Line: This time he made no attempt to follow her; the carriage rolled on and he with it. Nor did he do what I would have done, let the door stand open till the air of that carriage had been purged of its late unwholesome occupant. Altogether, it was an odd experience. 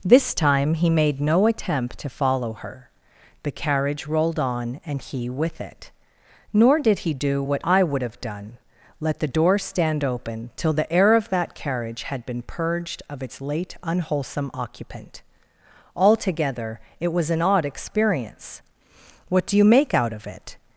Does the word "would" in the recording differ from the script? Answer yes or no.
no